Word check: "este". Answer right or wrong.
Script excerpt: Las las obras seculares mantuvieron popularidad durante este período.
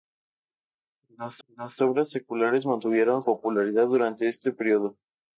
right